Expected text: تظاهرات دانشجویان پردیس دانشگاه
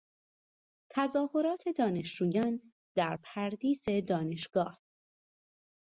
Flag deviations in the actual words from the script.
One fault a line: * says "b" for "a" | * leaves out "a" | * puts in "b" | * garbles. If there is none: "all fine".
* puts in "در"